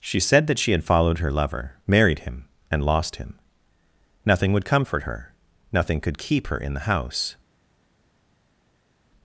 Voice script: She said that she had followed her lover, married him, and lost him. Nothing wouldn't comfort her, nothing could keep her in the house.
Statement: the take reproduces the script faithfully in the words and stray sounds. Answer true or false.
false